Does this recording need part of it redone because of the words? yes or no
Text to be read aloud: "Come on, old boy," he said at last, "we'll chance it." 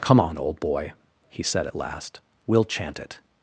yes